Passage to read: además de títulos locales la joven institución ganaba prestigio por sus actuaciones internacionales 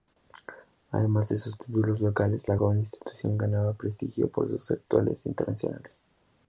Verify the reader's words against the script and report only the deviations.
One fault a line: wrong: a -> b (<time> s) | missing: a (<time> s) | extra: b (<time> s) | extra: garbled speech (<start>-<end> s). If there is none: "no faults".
extra: sus (1.4 s)